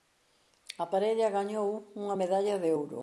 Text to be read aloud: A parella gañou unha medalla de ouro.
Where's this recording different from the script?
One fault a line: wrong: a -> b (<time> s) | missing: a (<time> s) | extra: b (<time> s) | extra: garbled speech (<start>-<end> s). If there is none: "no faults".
no faults